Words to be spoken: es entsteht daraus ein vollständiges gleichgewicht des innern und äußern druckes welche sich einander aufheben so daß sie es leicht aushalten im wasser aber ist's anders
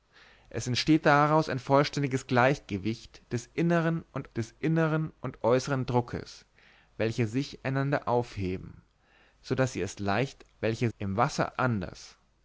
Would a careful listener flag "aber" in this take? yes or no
yes